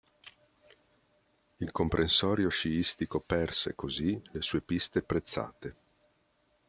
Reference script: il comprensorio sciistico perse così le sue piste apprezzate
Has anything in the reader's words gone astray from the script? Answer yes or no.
no